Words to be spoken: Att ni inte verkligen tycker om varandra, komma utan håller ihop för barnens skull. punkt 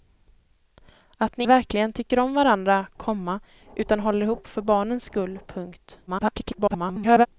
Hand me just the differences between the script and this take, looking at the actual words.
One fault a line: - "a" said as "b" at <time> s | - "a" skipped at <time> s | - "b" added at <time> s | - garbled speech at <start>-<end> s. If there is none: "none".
- "inte" skipped at 1.4 s
- garbled speech at 6.1-7.3 s